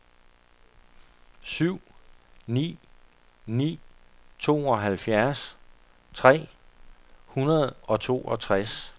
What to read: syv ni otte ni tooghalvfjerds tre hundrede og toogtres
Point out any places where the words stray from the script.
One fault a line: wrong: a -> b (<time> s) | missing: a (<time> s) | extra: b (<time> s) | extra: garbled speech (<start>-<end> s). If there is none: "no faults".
missing: otte (2.8 s)